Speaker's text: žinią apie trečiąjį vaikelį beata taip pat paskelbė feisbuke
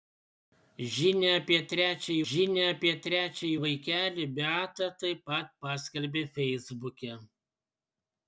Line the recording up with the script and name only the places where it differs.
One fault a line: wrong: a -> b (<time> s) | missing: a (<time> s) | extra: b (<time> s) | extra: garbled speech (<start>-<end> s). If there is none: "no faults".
extra: žinią apie trečiąjį (2.3 s)